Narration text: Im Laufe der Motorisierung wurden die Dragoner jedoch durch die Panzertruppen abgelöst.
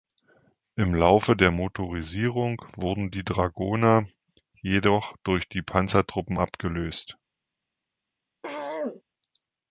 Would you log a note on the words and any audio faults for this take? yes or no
yes